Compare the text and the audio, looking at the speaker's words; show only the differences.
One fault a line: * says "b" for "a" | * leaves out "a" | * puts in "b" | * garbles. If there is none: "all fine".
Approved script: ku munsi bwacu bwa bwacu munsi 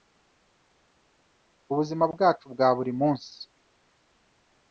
* says "buzima" for "munsi"
* says "buri" for "bwacu"